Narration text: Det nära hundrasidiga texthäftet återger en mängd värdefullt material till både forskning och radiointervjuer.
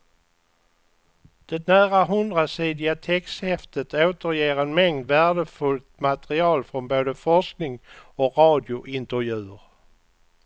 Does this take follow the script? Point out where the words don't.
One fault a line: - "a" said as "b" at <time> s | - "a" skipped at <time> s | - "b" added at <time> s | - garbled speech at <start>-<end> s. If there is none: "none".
- "till" said as "från" at 6.6 s